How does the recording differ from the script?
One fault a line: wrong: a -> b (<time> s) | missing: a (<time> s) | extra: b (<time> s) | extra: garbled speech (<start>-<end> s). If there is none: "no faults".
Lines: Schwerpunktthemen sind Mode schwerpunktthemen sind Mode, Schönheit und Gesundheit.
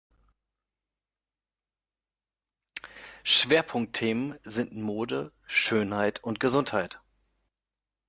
missing: schwerpunktthemen sind Mode (5.3 s)